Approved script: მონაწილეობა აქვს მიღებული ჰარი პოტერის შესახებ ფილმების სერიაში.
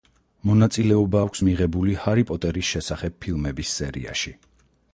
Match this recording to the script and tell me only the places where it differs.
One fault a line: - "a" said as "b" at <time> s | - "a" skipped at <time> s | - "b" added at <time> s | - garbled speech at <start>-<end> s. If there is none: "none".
none